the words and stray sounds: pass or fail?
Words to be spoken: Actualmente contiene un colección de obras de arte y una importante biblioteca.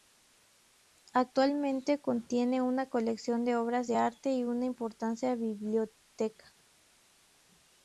fail